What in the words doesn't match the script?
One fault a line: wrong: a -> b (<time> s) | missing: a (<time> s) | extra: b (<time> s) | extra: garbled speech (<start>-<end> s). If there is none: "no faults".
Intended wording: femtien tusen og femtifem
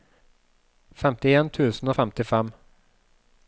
no faults